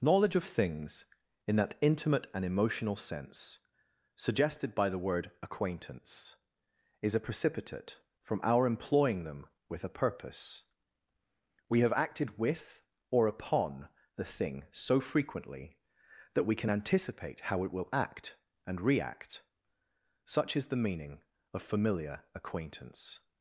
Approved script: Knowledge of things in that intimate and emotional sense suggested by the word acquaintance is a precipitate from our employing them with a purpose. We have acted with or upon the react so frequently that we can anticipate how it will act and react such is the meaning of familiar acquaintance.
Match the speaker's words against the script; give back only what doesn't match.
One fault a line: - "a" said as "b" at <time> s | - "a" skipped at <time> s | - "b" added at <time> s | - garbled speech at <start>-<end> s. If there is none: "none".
- "react" said as "thing" at 14.2 s